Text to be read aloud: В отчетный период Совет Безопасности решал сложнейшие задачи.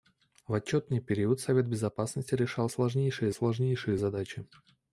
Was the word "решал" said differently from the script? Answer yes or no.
no